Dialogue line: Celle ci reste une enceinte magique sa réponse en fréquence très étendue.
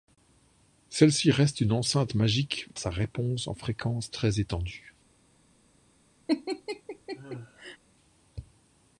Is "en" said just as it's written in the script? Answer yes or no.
yes